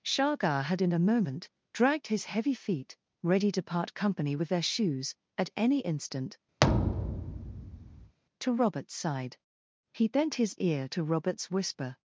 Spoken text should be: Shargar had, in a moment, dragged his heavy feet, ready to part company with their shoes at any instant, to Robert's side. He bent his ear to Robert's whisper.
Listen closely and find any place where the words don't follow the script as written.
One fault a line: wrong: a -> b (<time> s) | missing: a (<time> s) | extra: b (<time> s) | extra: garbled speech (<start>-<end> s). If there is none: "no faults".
no faults